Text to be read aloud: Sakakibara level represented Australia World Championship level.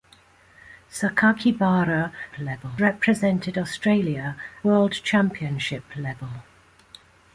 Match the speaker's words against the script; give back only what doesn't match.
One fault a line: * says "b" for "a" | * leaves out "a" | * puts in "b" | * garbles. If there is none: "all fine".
all fine